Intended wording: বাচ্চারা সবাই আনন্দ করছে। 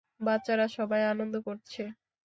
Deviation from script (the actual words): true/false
false